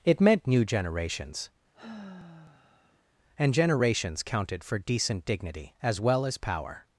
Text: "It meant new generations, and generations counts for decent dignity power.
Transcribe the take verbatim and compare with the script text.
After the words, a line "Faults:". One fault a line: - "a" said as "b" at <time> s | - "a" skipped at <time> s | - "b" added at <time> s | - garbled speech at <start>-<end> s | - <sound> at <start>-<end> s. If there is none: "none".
"It meant new generations, and generations counted for decent dignity as well as power.
Faults:
- sigh at 1.7-3.0 s
- "counts" said as "counted" at 4.2 s
- "as well as" added at 5.8 s